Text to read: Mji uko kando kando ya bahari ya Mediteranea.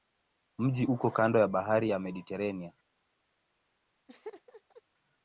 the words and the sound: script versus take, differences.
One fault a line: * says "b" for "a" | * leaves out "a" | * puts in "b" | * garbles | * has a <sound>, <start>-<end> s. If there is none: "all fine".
* leaves out "kando"
* has a laugh, 4.1-4.8 s